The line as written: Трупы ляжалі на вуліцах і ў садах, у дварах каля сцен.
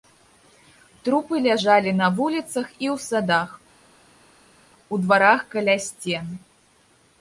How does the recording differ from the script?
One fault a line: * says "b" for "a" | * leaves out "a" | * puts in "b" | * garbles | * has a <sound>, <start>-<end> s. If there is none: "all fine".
all fine